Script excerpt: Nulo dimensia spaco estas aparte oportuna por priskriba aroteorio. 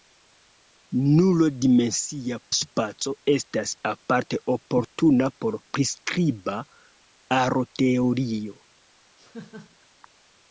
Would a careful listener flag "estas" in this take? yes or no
no